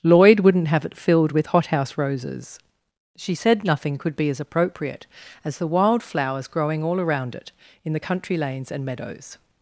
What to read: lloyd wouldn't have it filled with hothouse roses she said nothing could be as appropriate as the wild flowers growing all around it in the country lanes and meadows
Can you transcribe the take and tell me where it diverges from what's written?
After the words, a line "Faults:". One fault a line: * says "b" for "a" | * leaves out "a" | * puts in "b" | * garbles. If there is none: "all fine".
lloyd wouldn't have it filled with hothouse roses she said nothing could be as appropriate as the wild flowers growing all around it in the country lanes and meadows
Faults:
all fine